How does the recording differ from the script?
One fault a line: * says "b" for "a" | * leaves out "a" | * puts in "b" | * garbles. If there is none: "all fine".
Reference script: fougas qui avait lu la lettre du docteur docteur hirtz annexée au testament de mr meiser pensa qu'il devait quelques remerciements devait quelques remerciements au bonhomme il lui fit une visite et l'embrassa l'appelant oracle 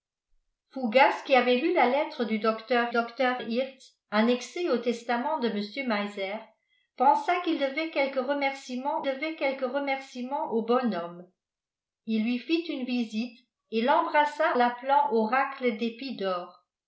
all fine